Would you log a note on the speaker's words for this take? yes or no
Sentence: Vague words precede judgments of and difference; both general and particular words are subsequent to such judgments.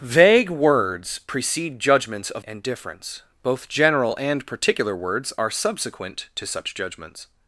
no